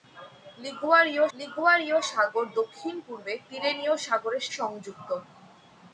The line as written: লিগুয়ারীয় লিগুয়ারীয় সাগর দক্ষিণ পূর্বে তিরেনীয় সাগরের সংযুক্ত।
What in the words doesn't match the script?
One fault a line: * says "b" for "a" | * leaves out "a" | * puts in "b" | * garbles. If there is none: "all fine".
all fine